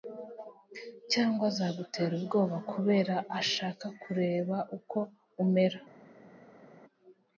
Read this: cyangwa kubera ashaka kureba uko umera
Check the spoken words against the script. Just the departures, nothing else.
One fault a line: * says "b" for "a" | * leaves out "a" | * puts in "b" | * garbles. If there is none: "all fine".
* puts in "azagutera ubwoba"